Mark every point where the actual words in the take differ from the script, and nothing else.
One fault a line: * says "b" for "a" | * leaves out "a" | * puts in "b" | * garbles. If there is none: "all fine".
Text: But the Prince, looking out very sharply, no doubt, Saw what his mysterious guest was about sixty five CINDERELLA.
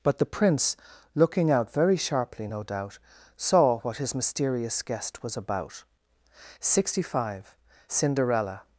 all fine